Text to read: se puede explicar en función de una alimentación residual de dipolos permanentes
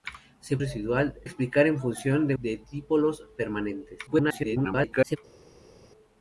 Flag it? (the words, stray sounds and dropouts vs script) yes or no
yes